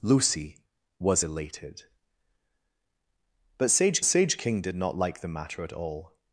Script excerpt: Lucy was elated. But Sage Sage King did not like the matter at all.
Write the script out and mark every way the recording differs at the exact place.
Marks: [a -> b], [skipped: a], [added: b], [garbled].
Lucy was elated. But Sage Sage King did not like the matter at all.